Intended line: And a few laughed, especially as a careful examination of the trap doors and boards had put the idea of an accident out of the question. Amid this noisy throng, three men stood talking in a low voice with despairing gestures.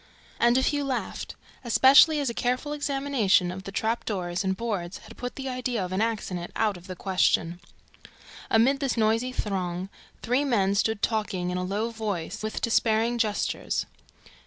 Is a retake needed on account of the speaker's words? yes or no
no